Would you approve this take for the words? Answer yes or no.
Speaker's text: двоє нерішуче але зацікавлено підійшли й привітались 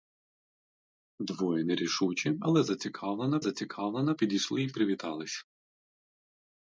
no